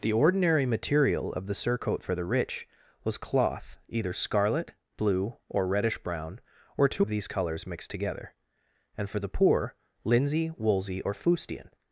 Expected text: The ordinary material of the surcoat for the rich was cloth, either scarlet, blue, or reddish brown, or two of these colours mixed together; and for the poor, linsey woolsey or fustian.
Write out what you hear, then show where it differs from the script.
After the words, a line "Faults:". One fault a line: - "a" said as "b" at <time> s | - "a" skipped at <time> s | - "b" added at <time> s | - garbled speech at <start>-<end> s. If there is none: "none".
The ordinary material of the surcoat for the rich was cloth, either scarlet, blue, or reddish brown, or two of these colours mixed together; and for the poor, linsey woolsey or fustian.
Faults:
none